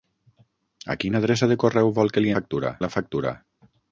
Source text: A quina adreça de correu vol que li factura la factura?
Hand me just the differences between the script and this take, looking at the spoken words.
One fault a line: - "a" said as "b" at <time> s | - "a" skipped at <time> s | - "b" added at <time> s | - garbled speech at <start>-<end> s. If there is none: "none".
none